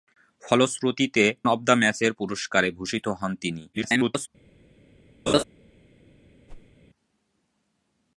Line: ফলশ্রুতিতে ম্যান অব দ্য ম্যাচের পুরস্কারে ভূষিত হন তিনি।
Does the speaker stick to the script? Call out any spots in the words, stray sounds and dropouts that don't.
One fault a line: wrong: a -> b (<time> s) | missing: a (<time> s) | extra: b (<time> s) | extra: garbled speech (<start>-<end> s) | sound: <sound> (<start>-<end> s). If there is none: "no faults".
missing: ম্যান (1.2 s)
extra: garbled speech (3.7-4.3 s)
sound: laugh (5.3-5.4 s)
sound: whoosh (6.5-6.7 s)